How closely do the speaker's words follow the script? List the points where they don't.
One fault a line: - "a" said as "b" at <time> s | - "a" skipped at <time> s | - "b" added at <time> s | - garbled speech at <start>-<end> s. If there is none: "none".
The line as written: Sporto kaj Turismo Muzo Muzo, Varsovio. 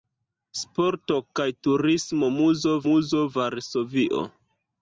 none